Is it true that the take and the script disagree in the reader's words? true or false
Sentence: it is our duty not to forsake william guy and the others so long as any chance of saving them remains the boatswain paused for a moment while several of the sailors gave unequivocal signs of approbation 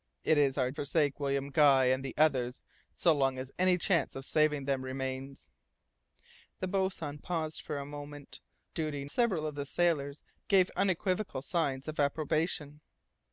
true